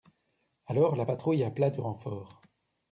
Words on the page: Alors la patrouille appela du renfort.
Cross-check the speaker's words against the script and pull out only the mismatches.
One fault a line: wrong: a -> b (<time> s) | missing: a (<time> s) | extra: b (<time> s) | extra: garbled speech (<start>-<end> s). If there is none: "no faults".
no faults